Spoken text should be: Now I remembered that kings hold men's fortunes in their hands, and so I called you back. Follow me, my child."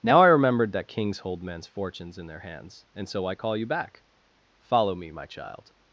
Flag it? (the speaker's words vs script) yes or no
yes